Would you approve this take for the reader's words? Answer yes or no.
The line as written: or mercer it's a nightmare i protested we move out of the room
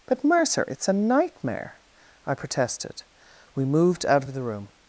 no